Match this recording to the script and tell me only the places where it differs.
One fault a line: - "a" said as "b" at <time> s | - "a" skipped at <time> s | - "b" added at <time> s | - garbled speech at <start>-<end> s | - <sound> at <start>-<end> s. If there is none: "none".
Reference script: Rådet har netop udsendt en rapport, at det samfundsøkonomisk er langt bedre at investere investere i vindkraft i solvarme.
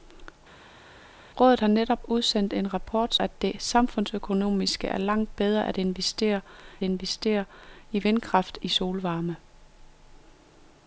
none